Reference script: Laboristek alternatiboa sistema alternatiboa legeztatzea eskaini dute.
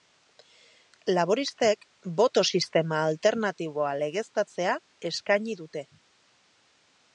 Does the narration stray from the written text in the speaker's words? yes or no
yes